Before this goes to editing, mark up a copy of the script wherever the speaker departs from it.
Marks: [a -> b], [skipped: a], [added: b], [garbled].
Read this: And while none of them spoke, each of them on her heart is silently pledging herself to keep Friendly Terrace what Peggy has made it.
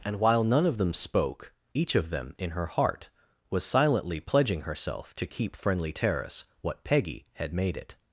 And while none of them spoke, each of them [on -> in] her heart [is -> was] silently pledging herself to keep Friendly Terrace what Peggy [has -> had] made it.